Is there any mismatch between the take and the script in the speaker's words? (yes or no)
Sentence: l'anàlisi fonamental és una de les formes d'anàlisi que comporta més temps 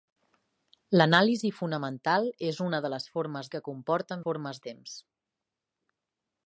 yes